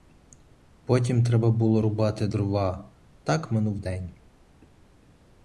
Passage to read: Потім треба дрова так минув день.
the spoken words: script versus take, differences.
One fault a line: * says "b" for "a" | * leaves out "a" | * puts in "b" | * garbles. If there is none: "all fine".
* puts in "було рубати"